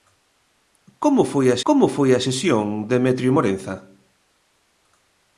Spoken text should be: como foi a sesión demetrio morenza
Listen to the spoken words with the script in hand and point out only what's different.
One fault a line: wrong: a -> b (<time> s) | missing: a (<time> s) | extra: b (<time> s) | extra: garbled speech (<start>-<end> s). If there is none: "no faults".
extra: como foi a (1.7 s)